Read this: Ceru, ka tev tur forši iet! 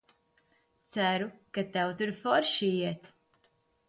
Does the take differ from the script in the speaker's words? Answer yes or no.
no